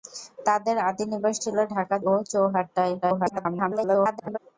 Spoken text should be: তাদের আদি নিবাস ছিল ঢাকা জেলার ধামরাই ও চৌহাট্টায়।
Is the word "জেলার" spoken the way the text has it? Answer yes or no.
no